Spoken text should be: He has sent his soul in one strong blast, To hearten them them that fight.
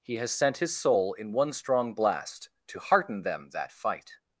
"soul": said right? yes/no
yes